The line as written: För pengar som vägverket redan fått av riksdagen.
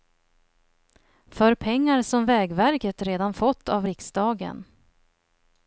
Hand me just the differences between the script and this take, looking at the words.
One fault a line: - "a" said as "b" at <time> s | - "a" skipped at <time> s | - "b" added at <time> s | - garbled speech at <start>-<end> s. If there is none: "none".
none